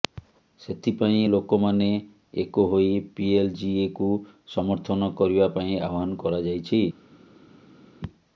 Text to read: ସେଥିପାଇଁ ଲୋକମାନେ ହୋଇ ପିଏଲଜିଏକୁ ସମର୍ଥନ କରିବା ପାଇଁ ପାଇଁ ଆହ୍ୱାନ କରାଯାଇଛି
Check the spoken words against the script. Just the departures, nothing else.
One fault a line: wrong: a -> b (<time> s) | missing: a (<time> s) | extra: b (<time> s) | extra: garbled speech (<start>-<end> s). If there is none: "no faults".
extra: ଏକ (2.4 s)
missing: ପାଇଁ (5.8 s)